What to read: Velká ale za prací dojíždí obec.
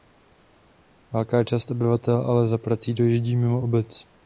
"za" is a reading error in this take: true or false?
false